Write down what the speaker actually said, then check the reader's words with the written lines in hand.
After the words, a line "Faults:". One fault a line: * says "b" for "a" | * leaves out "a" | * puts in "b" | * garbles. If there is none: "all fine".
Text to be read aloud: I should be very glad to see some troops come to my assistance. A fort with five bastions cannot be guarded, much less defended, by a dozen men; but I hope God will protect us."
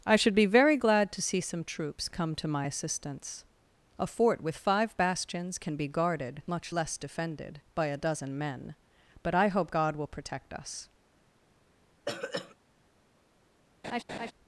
I should be very glad to see some troops come to my assistance. A fort with five bastions can be guarded, much less defended, by a dozen men; but I hope God will protect us."
Faults:
* says "can" for "cannot"